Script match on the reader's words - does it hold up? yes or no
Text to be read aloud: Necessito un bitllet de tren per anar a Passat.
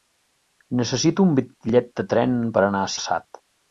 yes